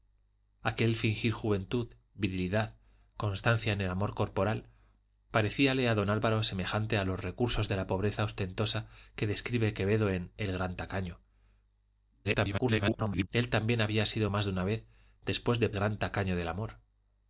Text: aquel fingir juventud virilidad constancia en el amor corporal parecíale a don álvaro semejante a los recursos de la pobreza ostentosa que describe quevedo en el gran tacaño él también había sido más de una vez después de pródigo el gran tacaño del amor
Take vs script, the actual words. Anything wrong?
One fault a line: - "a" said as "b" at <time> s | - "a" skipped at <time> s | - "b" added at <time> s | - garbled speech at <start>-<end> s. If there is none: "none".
- garbled speech at 12.2-13.3 s
- "pródigo el" skipped at 15.7 s